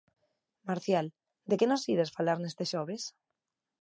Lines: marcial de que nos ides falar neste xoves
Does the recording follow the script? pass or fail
pass